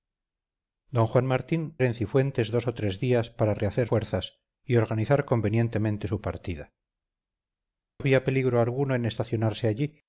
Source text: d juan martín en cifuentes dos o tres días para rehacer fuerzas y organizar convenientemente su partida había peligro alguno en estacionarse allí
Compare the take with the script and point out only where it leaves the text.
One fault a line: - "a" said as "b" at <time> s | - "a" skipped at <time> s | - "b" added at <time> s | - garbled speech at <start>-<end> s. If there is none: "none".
none